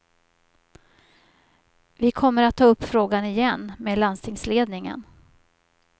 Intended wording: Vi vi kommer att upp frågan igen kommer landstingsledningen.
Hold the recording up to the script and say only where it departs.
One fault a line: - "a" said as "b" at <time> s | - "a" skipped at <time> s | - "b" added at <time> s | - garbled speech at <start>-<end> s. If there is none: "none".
- "vi" skipped at 2.1 s
- "ta" added at 2.5 s
- "kommer" said as "med" at 3.8 s